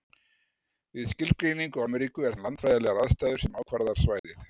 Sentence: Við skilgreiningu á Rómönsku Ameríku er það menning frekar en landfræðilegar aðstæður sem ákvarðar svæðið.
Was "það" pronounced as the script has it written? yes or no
no